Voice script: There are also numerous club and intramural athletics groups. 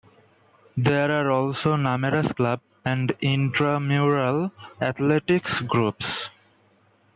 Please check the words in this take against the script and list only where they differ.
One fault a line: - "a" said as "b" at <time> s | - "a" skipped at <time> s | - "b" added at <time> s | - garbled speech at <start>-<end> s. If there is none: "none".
none